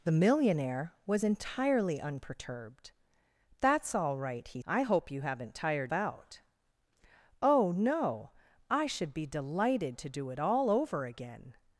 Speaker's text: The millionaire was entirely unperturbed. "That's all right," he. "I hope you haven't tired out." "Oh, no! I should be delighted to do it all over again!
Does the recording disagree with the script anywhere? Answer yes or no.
no